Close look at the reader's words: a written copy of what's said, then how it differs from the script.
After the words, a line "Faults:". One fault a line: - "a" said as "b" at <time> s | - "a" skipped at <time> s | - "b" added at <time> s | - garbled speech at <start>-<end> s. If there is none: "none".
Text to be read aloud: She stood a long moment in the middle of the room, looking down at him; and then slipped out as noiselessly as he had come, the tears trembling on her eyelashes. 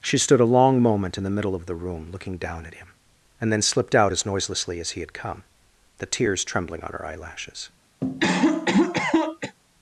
She stood a long moment in the middle of the room, looking down at him; and then slipped out as noiselessly as he had come, the tears trembling on her eyelashes.
Faults:
none